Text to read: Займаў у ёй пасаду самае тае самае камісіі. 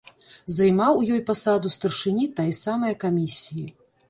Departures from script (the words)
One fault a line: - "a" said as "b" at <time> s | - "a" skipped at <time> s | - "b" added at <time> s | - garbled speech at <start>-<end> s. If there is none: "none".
- "самае" said as "старшыні" at 1.8 s